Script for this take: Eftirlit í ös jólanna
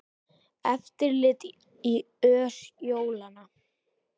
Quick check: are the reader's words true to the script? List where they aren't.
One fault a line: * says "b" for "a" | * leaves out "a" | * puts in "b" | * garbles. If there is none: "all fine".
all fine